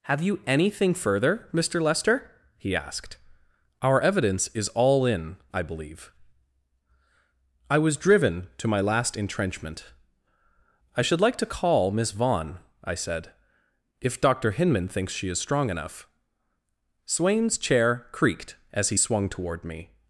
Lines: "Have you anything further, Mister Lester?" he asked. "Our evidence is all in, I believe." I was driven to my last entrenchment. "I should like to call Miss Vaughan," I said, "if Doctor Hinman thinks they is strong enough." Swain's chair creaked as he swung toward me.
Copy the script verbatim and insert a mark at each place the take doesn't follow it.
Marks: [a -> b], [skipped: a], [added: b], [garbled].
"Have you anything further, Mister Lester?" he asked. "Our evidence is all in, I believe." I was driven to my last entrenchment. "I should like to call Miss Vaughan," I said, "if Doctor Hinman thinks [they -> she] is strong enough." Swain's chair creaked as he swung toward me.